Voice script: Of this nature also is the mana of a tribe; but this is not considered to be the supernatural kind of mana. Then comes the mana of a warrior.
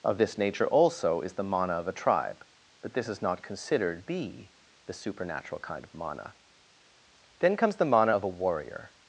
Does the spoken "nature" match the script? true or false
true